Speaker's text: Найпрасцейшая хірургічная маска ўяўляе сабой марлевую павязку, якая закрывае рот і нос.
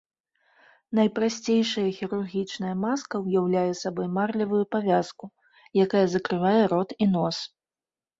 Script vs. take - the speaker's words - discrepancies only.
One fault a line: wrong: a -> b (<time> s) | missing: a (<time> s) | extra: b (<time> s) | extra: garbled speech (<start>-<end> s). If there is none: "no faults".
no faults